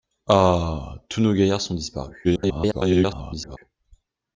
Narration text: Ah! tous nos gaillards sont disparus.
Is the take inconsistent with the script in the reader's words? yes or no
yes